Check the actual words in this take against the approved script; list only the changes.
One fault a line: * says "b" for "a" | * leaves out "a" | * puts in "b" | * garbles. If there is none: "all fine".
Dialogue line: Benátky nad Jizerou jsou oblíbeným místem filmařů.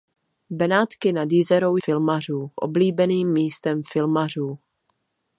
* says "filmařů" for "jsou"